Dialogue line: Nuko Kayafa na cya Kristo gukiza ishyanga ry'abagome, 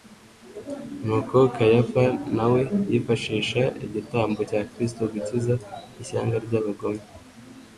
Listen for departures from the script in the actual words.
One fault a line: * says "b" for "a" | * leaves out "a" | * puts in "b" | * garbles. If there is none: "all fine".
* puts in "we yifashisha igitambo"